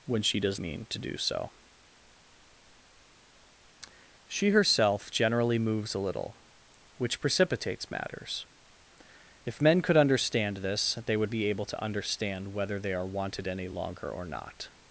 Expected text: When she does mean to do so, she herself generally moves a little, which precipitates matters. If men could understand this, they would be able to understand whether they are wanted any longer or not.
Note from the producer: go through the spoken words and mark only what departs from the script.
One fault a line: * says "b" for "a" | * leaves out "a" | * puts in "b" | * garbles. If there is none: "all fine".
all fine